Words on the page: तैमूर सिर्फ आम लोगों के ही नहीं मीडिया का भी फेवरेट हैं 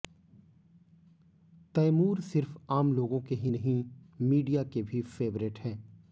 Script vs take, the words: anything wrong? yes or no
yes